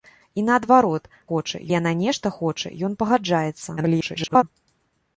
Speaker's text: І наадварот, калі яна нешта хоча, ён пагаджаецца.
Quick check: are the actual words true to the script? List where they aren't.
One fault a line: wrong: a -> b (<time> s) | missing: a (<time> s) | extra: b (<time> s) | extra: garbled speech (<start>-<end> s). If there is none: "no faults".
wrong: калі -> хоча (1.3 s)
extra: garbled speech (3.8-4.4 s)